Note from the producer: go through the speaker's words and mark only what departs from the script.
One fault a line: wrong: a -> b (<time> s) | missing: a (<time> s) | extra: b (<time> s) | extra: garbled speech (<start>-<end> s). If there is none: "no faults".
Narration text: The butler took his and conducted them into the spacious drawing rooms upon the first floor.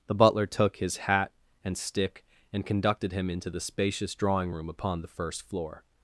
extra: hat (1.0 s)
extra: stick and (1.8 s)
wrong: them -> him (3.1 s)
wrong: rooms -> room (4.5 s)